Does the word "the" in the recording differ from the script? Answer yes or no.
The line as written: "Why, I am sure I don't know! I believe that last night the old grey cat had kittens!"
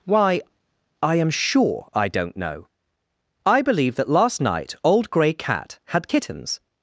yes